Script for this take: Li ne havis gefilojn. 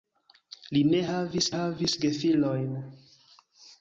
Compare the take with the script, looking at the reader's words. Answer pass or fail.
fail